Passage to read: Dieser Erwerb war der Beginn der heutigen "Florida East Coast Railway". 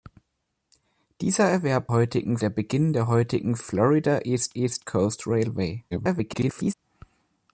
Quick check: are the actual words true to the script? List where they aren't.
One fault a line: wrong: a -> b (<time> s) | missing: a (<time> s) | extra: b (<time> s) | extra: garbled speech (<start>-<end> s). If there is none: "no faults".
wrong: war -> heutigen (1.9 s)
extra: East (4.5 s)
extra: garbled speech (5.9-6.7 s)